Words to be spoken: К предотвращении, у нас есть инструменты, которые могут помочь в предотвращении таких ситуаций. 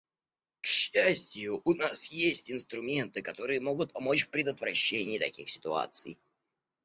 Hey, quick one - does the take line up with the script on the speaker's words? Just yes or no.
no